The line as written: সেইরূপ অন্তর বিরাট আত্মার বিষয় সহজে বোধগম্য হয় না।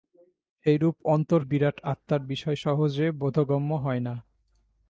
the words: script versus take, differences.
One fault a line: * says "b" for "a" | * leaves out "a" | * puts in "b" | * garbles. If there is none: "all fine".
all fine